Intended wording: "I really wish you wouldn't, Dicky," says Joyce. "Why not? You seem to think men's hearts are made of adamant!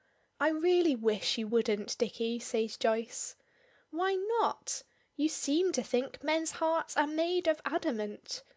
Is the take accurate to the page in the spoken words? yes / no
yes